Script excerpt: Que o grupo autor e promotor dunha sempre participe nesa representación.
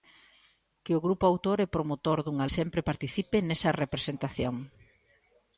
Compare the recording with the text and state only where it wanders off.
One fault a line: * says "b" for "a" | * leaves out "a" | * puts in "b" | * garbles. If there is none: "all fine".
all fine